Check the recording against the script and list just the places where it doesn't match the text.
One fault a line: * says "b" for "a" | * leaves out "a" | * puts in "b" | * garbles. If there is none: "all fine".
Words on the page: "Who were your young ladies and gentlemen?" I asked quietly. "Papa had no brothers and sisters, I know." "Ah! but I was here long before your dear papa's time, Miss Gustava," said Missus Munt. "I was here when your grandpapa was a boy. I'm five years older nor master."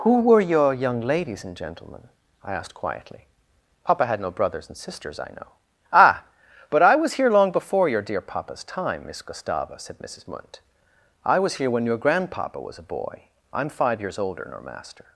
all fine